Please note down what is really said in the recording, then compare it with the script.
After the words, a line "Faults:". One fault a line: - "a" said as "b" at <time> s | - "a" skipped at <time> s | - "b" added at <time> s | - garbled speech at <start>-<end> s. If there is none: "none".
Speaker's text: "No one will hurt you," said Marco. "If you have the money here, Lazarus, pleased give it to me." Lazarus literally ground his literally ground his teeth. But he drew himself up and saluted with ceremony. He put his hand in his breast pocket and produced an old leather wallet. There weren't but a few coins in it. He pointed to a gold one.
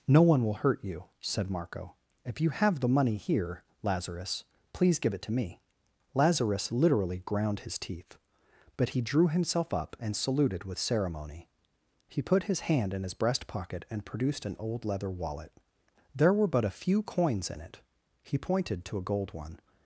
"No one will hurt you," said Marco. "If you have the money here, Lazarus, please give it to me." Lazarus literally ground his teeth. But he drew himself up and saluted with ceremony. He put his hand in his breast pocket and produced an old leather wallet. There were but a few coins in it. He pointed to a gold one.
Faults:
- "pleased" said as "please" at 4.7 s
- "literally ground his" skipped at 7.8 s
- "weren't" said as "were" at 16.3 s